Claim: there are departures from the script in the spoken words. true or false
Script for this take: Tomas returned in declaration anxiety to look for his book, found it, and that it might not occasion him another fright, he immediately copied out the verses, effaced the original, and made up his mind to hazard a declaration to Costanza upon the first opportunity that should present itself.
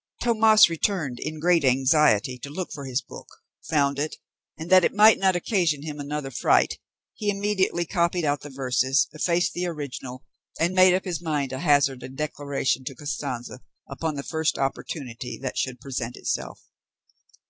true